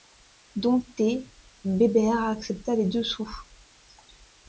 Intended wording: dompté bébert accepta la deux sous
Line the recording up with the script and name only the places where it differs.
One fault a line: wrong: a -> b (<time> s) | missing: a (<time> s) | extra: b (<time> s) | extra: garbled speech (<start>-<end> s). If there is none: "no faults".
wrong: la -> les (2.8 s)